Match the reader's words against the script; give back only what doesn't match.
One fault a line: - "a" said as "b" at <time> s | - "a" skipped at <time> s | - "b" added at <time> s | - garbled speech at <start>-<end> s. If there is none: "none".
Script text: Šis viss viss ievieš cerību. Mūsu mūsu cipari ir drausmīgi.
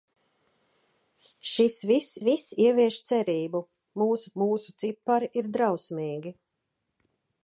none